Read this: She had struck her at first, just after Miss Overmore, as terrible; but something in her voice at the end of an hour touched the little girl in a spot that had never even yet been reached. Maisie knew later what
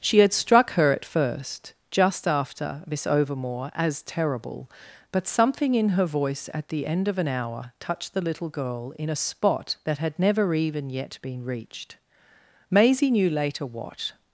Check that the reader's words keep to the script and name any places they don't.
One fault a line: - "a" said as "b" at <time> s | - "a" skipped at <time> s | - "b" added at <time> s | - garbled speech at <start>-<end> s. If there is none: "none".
none